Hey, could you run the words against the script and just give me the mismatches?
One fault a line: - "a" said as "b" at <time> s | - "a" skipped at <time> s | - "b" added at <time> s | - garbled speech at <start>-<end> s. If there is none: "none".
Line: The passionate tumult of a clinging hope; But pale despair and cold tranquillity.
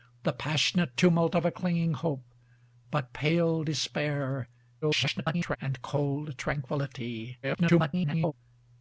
- garbled speech at 4.8-5.6 s
- garbled speech at 7.4-8.3 s